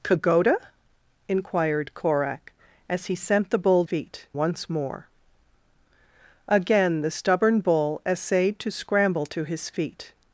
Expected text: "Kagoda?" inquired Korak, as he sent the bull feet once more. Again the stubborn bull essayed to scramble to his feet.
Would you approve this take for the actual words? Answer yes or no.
yes